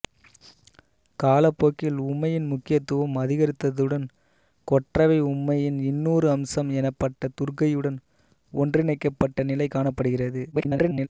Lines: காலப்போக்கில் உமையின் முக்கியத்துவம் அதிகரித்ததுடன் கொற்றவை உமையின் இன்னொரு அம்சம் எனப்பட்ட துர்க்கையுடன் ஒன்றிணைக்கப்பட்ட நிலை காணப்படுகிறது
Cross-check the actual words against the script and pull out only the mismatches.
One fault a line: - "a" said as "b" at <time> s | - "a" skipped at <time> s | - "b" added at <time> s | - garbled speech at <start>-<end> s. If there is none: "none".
- garbled speech at 10.5-11.1 s